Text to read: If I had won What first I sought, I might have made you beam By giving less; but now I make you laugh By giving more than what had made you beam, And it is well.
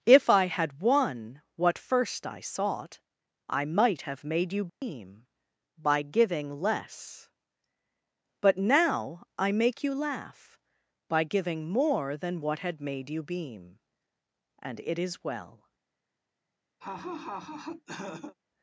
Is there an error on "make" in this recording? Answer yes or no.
no